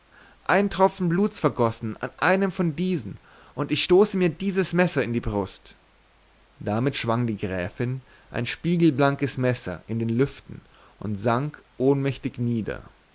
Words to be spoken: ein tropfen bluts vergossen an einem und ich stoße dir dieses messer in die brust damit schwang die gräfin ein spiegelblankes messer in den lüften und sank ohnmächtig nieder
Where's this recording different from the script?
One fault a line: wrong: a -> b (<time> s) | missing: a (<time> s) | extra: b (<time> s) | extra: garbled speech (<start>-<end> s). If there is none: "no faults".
extra: von diesen (2.5 s)
wrong: dir -> mir (4.2 s)